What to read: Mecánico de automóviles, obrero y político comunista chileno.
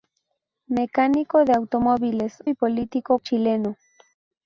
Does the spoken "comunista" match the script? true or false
false